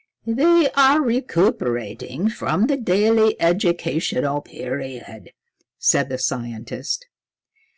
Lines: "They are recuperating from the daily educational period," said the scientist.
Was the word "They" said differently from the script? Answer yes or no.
no